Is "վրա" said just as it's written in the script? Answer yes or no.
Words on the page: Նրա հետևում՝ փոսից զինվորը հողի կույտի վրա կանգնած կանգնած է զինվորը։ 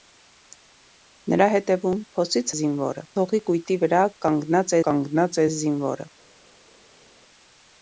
yes